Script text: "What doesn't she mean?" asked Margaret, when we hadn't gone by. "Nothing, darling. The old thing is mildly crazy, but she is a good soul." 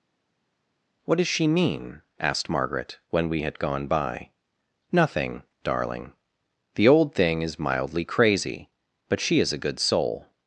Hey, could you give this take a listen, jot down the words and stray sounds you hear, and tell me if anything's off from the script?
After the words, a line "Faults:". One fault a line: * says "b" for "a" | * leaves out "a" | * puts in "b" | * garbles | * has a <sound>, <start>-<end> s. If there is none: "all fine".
"What does she mean?" asked Margaret, when we had gone by. "Nothing, darling. The old thing is mildly crazy, but she is a good soul."
Faults:
* says "does" for "doesn't"
* says "had" for "hadn't"